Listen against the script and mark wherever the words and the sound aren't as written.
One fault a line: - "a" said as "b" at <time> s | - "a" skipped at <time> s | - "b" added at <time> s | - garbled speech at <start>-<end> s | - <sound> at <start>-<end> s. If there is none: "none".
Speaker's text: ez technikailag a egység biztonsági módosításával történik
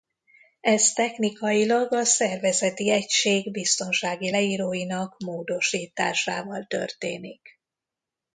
- "szervezeti" added at 2.0 s
- "leíróinak" added at 4.3 s